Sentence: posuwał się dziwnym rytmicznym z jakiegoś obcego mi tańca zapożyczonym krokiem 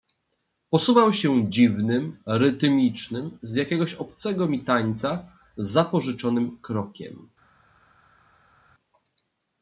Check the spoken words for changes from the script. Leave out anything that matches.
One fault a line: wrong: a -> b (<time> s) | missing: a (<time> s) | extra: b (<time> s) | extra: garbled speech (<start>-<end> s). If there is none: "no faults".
no faults